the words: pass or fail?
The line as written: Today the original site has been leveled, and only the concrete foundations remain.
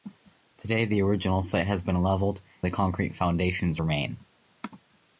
fail